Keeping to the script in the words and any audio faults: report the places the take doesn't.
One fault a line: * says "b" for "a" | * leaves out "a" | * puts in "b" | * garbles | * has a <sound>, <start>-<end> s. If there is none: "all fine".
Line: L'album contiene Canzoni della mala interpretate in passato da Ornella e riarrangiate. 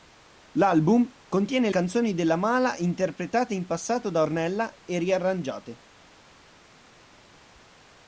all fine